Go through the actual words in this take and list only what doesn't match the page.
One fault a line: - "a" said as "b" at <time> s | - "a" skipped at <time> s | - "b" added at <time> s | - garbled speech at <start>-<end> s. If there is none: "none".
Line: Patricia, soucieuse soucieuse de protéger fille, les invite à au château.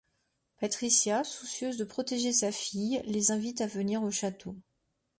- "soucieuse" skipped at 1.8 s
- "sa" added at 2.3 s
- "venir" added at 3.7 s